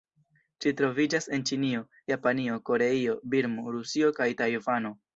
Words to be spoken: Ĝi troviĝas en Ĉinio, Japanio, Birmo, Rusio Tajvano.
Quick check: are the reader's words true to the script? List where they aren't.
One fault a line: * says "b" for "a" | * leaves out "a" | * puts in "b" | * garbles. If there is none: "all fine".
* puts in "Koreio"
* puts in "kaj"